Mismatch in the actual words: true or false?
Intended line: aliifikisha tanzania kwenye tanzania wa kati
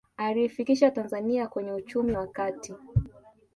true